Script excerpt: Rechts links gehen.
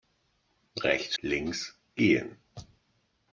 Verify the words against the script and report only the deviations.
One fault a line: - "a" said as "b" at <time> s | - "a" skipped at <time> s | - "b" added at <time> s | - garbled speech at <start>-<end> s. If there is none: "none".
none